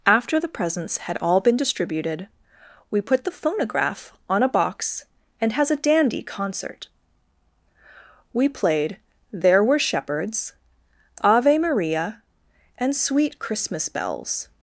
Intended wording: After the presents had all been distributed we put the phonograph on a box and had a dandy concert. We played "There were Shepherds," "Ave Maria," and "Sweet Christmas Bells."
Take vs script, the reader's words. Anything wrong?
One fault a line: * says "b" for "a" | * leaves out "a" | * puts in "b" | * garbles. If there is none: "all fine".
* says "has" for "had"